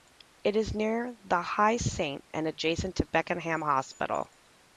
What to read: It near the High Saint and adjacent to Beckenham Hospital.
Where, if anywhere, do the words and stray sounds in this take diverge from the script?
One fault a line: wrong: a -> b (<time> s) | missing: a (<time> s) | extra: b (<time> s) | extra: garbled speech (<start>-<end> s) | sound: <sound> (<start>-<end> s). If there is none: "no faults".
extra: is (0.6 s)